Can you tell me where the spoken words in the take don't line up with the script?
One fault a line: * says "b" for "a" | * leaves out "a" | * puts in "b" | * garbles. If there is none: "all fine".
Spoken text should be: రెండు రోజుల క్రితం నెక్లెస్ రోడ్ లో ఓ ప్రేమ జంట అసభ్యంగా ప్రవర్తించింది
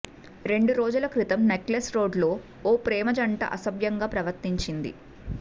all fine